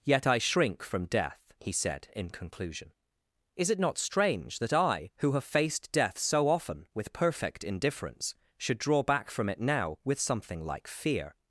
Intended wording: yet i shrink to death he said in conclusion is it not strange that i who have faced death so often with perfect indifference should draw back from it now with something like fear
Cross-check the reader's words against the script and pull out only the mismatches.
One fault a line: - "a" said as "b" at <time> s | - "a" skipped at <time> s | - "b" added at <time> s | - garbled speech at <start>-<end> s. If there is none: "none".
- "to" said as "from" at 0.8 s